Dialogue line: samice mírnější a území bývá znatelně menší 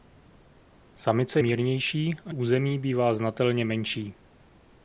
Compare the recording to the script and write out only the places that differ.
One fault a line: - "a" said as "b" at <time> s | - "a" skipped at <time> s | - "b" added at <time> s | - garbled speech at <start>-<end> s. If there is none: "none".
none